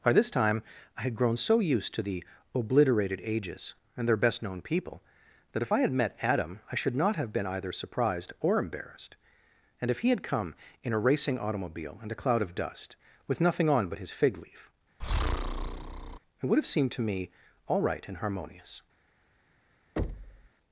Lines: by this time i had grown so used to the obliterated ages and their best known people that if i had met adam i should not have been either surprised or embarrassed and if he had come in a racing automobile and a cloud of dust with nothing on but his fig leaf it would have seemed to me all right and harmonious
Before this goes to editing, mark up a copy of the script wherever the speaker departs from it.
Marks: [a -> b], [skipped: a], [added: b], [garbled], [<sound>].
by this time i had grown so used to the obliterated ages and their best known people that if i had met adam i should not have been either surprised or embarrassed and if he had come in a racing automobile and a cloud of dust with nothing on but his fig leaf [breath] it would have seemed to me all right and harmonious [thud]